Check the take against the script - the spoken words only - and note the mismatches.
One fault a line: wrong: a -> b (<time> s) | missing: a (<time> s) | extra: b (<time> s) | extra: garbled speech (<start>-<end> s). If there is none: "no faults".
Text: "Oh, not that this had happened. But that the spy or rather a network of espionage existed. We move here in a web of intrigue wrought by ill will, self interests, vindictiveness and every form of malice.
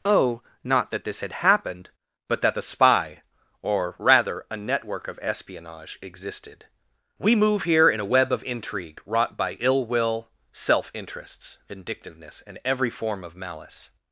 no faults